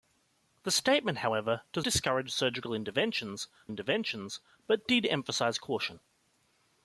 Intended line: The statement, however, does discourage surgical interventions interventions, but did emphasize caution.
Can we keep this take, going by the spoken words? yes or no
yes